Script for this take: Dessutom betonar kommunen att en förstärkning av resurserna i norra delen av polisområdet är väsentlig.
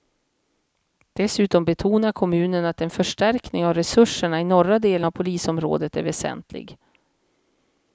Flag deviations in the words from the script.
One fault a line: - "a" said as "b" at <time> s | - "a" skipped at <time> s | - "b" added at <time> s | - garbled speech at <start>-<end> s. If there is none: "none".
none